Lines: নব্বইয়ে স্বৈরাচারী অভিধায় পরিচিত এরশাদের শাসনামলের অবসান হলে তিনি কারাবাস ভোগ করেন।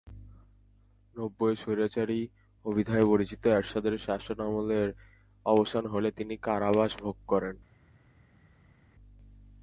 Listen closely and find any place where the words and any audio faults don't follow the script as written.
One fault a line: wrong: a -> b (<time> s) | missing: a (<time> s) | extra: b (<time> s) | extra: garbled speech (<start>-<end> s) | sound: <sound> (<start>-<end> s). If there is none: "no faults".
no faults